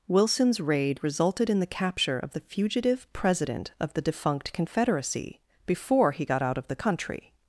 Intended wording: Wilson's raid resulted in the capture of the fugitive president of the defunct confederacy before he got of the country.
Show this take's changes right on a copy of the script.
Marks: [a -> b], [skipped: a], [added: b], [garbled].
Wilson's raid resulted in the capture of the fugitive president of the defunct confederacy before he got [added: out] of the country.